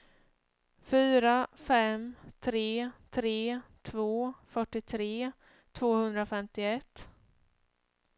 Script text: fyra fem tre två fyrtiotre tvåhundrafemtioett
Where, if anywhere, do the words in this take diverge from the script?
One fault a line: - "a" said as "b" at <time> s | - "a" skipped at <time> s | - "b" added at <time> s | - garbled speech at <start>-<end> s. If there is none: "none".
- "tre" added at 3.1 s